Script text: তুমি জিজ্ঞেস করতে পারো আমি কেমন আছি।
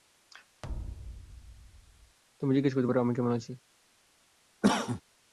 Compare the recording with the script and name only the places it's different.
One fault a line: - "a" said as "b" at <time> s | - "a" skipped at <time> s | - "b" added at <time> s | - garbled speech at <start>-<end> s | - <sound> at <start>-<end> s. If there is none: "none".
- thud at 0.6-2.2 s
- cough at 4.6-5.0 s